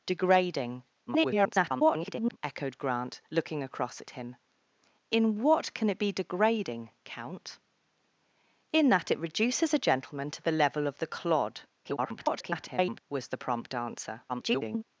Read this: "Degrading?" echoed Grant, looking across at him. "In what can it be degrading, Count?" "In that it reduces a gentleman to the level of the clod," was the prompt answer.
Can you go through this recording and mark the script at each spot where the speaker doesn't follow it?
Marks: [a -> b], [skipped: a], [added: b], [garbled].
"Degrading?" [garbled] echoed Grant, looking across at him. "In what can it be degrading, Count?" "In that it reduces a gentleman to the level of the clod," [garbled] was the prompt answer. [garbled]